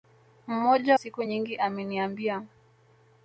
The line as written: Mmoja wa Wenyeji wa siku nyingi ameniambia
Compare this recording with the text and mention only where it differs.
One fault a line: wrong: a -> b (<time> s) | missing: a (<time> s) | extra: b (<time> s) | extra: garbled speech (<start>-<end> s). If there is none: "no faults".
missing: wa Wenyeji wa (1.0 s)